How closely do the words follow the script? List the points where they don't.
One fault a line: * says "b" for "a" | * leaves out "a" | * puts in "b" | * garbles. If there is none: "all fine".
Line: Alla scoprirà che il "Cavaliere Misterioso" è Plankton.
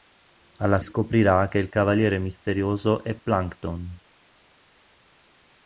all fine